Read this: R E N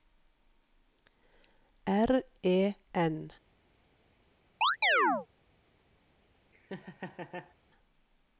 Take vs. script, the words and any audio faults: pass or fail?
fail